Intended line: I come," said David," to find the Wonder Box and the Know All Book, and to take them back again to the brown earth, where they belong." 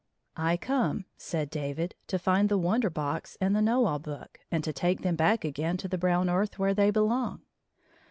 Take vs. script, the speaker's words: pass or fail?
pass